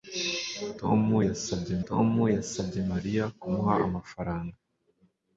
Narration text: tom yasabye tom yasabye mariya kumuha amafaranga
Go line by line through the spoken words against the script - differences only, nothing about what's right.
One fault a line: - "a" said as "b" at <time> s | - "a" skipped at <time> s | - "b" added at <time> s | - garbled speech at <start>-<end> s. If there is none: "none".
none